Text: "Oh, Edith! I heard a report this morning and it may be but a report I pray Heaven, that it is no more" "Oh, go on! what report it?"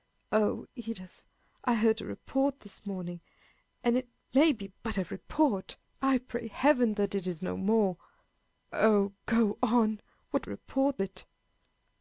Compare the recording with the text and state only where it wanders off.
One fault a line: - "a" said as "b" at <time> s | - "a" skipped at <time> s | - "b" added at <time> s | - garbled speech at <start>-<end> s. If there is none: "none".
none